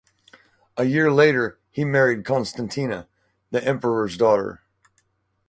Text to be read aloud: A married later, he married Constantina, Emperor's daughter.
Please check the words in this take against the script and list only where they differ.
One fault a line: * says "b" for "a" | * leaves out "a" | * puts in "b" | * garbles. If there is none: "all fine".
* says "year" for "married"
* puts in "the"